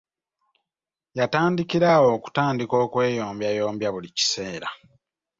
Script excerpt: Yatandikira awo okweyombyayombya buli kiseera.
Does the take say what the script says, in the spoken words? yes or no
no